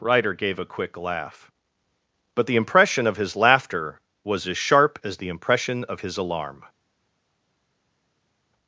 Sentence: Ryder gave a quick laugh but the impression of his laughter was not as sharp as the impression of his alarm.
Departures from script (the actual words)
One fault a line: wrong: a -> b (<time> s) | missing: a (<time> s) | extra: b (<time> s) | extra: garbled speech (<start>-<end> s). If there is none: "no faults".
missing: not (4.5 s)